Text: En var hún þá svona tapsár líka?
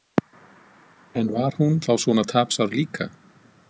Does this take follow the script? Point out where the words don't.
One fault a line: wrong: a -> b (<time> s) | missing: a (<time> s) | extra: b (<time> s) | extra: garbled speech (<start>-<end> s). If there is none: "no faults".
no faults